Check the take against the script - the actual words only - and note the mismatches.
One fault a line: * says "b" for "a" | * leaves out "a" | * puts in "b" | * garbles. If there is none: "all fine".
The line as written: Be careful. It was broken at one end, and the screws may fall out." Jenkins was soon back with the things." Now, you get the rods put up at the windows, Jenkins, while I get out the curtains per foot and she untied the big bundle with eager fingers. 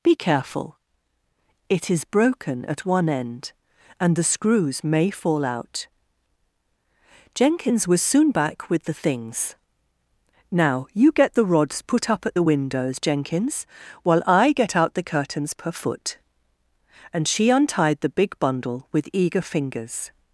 * says "is" for "was"